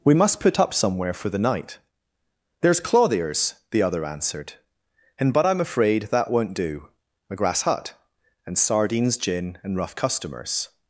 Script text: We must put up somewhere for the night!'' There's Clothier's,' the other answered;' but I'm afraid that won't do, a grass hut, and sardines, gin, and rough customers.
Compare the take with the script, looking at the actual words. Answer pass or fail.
fail